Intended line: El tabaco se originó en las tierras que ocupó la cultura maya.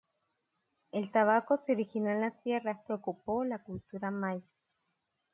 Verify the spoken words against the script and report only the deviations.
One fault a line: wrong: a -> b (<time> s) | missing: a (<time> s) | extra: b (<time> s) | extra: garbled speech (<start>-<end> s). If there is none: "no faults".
no faults